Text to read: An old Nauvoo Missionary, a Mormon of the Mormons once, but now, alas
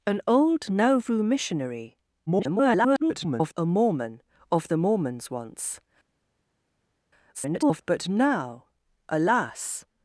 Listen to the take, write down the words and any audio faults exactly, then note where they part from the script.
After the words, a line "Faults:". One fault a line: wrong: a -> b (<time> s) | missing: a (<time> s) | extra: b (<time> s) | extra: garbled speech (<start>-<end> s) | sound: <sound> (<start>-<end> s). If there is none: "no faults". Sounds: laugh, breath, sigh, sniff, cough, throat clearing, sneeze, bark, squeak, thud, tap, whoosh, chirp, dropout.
An old Nauvoo Missionary, [garbled] a Mormon of the Mormons once, [garbled] but now, alas
Faults:
extra: garbled speech (2.3-3.5 s)
extra: garbled speech (7.3-7.8 s)